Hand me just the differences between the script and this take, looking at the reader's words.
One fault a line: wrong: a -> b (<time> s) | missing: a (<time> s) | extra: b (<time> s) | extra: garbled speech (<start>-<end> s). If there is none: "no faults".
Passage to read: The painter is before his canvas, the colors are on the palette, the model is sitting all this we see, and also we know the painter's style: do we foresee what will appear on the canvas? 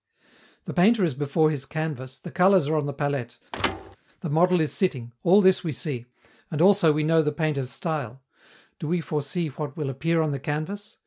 no faults